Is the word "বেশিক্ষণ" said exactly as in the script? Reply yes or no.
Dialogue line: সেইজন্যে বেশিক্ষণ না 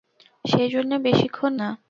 yes